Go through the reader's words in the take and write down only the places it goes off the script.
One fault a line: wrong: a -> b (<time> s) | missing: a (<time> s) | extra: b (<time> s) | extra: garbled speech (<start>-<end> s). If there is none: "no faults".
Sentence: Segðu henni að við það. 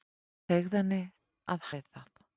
no faults